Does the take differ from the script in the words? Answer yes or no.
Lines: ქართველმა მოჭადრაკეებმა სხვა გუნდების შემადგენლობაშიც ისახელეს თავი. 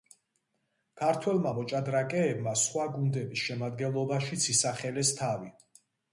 no